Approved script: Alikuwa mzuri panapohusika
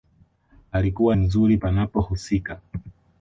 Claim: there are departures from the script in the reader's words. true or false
false